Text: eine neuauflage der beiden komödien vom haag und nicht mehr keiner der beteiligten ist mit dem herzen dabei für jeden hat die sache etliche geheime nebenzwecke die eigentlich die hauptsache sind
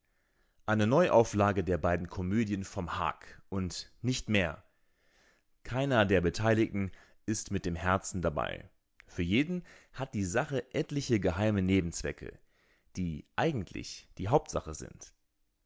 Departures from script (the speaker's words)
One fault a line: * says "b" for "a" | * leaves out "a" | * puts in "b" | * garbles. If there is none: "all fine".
all fine